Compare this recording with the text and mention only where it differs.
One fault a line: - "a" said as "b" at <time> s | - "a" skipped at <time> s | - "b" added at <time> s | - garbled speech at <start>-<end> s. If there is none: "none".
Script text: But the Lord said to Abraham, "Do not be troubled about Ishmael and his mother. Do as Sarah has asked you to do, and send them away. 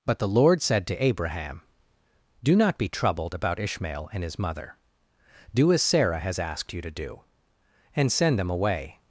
none